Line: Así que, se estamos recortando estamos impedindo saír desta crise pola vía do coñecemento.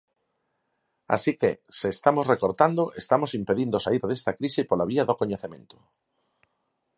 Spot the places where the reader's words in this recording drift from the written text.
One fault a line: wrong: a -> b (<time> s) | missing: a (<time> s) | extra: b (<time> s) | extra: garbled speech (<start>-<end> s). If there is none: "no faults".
no faults